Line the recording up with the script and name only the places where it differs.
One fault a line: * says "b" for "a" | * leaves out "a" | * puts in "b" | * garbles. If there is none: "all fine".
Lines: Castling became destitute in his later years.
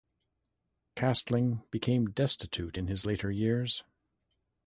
all fine